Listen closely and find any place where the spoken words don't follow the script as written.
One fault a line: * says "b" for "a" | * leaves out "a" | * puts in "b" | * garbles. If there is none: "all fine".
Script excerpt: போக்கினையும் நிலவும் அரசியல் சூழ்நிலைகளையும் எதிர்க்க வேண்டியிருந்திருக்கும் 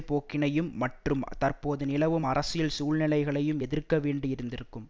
* puts in "மற்றும் தற்போது"